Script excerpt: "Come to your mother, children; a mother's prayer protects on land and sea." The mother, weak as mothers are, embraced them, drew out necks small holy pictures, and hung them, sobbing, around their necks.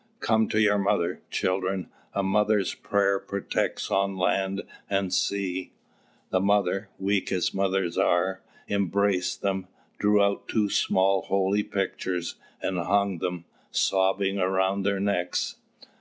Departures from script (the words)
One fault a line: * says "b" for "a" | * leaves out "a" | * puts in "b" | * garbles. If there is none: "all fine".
* says "two" for "necks"